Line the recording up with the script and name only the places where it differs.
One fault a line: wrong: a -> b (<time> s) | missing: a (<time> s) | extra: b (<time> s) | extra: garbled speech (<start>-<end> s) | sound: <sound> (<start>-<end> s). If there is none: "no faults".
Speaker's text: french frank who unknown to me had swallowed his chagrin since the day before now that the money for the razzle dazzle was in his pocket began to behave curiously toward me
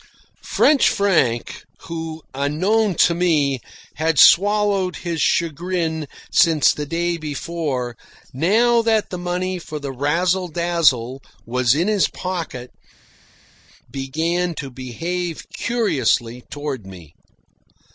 no faults